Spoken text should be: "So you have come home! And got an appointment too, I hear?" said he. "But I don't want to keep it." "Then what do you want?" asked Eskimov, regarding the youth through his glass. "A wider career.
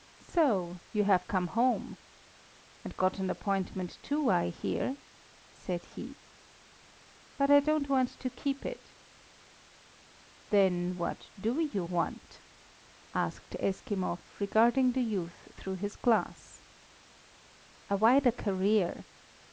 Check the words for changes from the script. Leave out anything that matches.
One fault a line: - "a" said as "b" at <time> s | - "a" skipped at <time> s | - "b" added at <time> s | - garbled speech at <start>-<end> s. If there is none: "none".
none